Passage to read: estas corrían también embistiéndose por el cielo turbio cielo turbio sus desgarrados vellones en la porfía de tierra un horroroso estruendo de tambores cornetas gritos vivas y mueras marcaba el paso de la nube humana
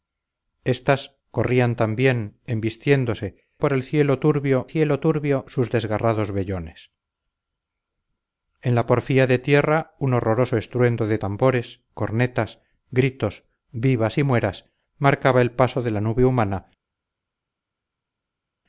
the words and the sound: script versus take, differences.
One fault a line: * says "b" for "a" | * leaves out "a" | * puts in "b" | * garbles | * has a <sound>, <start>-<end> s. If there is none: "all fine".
all fine